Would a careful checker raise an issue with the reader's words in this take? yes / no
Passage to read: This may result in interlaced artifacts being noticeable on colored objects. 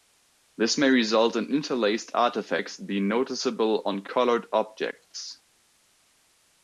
no